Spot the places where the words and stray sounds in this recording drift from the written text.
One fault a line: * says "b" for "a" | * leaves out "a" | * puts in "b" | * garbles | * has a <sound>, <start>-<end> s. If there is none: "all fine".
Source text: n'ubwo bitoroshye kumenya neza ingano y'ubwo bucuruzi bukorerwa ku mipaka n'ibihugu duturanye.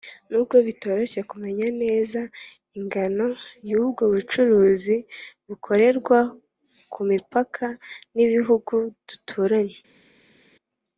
all fine